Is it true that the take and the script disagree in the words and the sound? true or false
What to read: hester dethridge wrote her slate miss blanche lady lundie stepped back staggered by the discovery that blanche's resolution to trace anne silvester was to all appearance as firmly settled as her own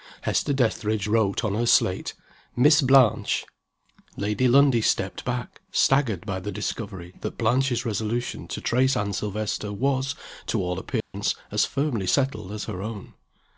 true